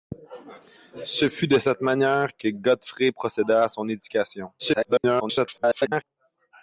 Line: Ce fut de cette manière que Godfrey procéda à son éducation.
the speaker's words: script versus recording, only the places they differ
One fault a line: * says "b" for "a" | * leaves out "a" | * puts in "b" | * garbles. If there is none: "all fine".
* garbles